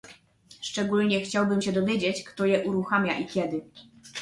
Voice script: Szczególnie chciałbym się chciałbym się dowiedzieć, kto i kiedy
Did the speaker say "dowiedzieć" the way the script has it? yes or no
no